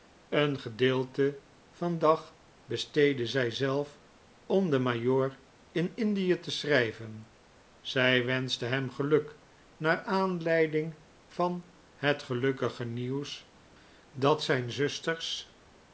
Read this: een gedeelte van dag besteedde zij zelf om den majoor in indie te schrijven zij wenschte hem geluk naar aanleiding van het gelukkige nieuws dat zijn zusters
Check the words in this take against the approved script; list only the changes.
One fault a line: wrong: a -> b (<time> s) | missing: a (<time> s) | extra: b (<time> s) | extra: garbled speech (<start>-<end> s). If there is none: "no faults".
no faults